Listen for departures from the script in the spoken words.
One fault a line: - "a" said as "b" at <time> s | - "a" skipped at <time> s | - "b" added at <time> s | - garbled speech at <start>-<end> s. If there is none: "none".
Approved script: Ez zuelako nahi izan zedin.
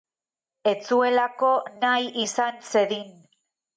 none